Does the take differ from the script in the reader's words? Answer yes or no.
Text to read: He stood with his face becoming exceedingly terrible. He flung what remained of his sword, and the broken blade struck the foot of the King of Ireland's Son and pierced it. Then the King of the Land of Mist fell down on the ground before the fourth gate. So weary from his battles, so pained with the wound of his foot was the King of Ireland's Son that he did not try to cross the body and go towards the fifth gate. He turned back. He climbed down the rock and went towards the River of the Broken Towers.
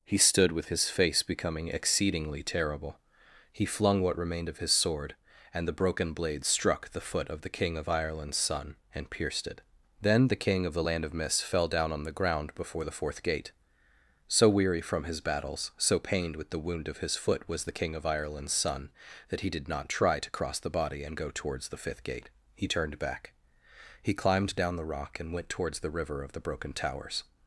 no